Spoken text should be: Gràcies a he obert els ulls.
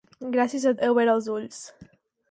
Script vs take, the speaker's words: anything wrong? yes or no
no